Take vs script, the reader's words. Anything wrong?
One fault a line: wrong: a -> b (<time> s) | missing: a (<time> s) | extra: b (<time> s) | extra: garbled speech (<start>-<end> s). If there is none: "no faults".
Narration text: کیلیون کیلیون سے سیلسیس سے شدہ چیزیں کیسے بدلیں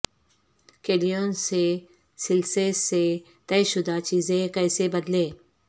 missing: کیلیون (1.3 s)
extra: طے (3.5 s)